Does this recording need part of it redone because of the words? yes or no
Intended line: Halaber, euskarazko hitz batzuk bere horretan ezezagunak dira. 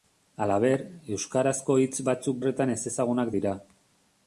yes